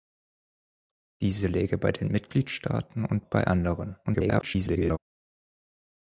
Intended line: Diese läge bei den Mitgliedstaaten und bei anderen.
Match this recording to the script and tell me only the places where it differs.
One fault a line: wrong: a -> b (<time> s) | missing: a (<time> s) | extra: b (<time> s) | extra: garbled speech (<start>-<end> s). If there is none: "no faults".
extra: garbled speech (4.0-5.0 s)